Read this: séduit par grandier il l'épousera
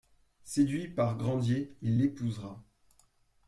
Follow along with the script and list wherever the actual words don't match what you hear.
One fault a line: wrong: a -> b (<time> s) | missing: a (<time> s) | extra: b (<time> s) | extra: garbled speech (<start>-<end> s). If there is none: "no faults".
no faults